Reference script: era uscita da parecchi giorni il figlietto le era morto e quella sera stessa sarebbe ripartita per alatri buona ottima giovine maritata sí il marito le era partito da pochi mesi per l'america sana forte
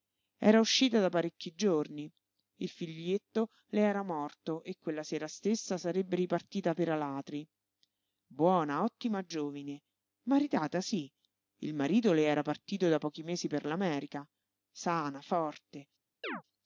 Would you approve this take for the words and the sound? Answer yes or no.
no